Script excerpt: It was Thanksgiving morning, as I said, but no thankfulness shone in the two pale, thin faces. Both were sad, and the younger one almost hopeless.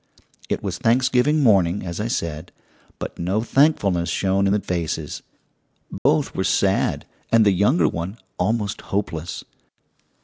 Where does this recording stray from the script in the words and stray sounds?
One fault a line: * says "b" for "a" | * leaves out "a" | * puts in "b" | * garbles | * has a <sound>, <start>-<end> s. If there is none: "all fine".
* leaves out "two pale thin"
* has a dropout, 6.0-6.1 s